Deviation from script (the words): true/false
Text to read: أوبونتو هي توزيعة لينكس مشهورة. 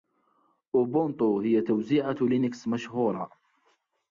false